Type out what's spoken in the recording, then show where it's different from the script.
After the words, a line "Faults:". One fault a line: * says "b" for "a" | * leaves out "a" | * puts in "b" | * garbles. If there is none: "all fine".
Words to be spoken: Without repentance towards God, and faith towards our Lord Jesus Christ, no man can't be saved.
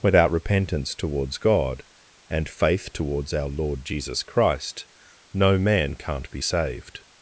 Without repentance towards God, and faith towards our Lord Jesus Christ, no man can't be saved.
Faults:
all fine